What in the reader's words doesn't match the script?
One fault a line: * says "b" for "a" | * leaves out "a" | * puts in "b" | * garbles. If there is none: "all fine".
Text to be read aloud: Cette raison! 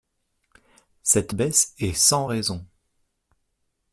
* puts in "baisse est sans"